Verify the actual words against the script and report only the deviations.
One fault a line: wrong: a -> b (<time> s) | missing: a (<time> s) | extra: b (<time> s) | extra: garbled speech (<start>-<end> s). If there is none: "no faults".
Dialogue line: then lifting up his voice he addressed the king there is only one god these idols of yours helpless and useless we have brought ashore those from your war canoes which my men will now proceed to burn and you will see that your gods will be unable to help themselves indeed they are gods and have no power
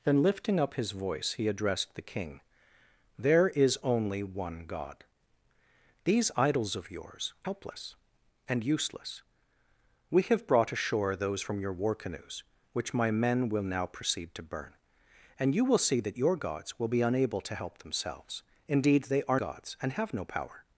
no faults